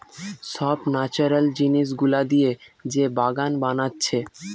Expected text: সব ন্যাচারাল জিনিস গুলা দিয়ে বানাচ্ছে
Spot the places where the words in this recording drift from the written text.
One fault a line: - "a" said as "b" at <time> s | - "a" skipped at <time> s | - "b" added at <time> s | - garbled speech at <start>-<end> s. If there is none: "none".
- "যে বাগান" added at 2.8 s